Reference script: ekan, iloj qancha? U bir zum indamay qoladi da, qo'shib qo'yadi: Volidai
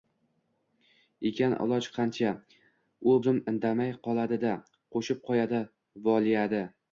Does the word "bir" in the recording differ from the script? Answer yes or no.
yes